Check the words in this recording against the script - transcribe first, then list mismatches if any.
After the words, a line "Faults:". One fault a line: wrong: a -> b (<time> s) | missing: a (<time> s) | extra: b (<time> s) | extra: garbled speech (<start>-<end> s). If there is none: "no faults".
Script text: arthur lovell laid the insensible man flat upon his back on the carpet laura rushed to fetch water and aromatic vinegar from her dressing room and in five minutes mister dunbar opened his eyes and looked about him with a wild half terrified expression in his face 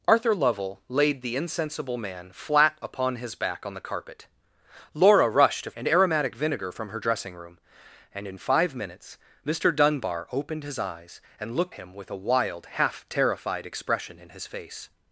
arthur lovell laid the insensible man flat upon his back on the carpet laura rushed to and aromatic vinegar from her dressing room and in five minutes mister dunbar opened his eyes and looked him with a wild half terrified expression in his face
Faults:
missing: fetch water (5.7 s)
missing: about (11.7 s)